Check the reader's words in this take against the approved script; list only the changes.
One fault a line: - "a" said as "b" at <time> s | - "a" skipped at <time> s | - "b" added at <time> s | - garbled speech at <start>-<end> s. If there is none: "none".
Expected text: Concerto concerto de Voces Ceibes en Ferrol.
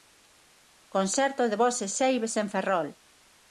- "concerto" skipped at 1.5 s